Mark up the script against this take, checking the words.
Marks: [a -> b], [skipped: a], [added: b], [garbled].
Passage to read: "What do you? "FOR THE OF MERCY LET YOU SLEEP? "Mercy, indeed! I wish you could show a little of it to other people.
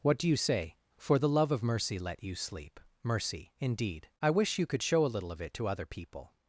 "What do you? [added: say] "FOR THE [added: LOVE] OF MERCY LET YOU SLEEP? "Mercy, indeed! I wish you could show a little of it to other people.